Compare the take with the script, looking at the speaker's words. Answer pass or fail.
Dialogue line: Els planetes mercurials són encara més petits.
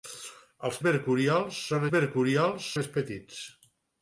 fail